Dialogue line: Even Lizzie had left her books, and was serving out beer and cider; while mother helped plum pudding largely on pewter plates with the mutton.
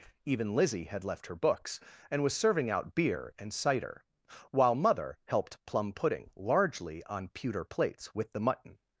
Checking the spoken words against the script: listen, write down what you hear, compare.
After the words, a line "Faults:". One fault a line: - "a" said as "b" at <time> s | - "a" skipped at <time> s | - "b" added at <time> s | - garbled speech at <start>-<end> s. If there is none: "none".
Even Lizzie had left her books, and was serving out beer and cider; while mother helped plum pudding largely on pewter plates with the mutton.
Faults:
none